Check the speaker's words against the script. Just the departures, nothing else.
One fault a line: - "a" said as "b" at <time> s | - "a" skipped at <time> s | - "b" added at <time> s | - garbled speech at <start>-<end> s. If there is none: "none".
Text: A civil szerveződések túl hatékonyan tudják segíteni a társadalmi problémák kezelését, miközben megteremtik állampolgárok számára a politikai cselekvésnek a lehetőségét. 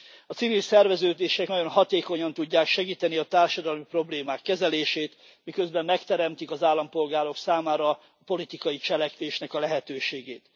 - "túl" said as "nagyon" at 1.5 s
- "az" added at 6.5 s